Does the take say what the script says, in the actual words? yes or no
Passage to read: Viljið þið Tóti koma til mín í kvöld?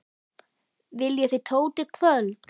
no